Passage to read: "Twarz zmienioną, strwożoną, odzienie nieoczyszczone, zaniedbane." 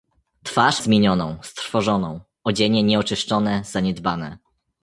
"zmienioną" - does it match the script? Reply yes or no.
yes